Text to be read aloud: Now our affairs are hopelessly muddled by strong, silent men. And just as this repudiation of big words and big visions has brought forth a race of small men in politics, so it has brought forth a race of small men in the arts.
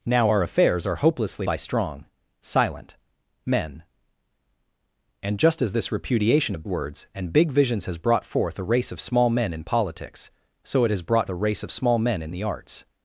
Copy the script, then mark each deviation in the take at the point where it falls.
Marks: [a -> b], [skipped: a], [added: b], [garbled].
Now our affairs are hopelessly [skipped: muddled] by strong, silent men. And just as this repudiation of [skipped: big] words and big visions has brought forth a race of small men in politics, so it has brought [skipped: forth] a race of small men in the arts.